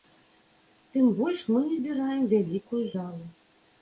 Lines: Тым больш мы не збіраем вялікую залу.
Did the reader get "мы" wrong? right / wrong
right